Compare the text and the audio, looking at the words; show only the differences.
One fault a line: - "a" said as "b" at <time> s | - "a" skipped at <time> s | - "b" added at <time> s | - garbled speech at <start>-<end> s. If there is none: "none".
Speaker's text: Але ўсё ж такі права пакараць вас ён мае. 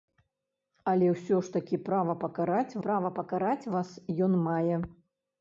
- "права пакараць" added at 2.8 s